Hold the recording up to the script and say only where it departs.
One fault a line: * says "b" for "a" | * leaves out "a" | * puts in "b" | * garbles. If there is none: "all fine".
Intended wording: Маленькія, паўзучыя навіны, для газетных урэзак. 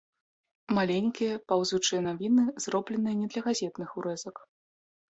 * puts in "зробленыя не"